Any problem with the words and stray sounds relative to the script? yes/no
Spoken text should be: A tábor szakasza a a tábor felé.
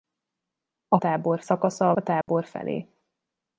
yes